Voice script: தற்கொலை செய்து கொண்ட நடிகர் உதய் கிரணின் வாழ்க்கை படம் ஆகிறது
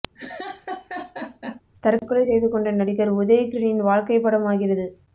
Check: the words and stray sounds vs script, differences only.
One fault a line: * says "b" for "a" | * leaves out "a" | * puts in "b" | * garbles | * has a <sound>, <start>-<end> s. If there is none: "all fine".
* has a laugh, 0.1-1.6 s